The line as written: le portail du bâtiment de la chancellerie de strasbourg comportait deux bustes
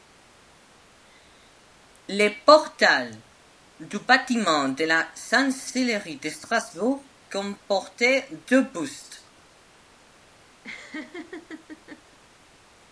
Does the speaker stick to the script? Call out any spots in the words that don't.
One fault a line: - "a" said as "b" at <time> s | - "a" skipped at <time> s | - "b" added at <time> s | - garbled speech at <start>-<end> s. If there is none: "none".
none